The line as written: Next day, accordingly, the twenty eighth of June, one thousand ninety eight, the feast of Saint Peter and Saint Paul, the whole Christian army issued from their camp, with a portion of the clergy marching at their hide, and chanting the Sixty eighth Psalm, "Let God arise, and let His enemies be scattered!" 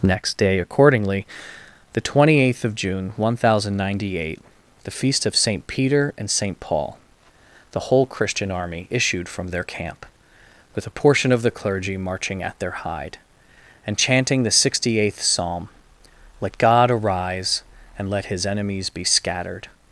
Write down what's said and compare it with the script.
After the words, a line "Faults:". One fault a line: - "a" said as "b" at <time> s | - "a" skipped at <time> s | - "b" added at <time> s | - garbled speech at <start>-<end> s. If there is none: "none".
Next day, accordingly, the twenty eighth of June, one thousand ninety eight, the feast of Saint Peter and Saint Paul, the whole Christian army issued from their camp, with a portion of the clergy marching at their hide, and chanting the Sixty eighth Psalm, "Let God arise, and let His enemies be scattered!"
Faults:
none